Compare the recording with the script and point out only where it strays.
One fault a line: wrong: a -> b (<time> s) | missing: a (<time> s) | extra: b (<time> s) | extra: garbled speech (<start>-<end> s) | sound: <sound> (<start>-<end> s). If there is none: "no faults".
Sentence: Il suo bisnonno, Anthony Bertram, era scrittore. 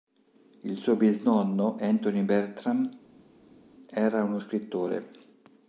extra: uno (4.2 s)